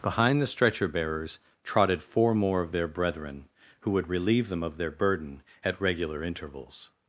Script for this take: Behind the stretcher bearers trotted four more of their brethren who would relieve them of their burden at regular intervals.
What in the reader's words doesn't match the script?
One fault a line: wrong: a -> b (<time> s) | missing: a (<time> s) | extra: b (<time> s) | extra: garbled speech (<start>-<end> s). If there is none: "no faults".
no faults